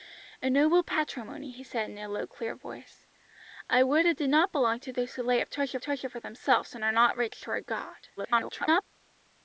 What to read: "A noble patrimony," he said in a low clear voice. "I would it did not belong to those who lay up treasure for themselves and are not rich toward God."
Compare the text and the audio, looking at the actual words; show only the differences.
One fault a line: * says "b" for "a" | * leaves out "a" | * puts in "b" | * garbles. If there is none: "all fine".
* puts in "treasure"
* garbles